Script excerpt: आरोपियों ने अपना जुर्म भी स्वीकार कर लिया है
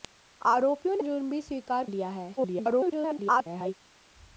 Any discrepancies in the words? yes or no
yes